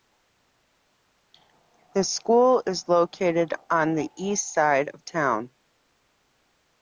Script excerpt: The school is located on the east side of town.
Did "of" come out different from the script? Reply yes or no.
no